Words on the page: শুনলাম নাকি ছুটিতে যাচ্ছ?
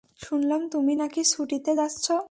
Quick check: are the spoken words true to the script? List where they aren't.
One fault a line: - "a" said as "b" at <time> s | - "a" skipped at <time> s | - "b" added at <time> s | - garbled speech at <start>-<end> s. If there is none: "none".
- "তুমি" added at 0.7 s